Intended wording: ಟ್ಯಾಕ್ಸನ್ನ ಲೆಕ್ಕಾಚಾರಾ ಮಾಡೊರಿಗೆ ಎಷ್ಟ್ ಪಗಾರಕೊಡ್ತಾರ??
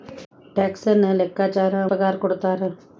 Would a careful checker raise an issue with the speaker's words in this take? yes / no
yes